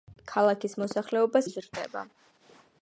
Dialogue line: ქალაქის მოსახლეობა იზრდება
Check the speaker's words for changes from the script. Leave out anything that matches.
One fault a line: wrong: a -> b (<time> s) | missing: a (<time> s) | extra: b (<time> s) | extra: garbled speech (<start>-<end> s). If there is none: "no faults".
no faults